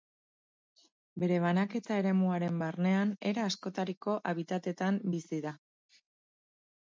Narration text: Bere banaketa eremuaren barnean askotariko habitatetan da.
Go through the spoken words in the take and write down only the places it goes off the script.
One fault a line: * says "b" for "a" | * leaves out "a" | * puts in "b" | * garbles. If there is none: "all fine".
* puts in "era"
* puts in "bizi"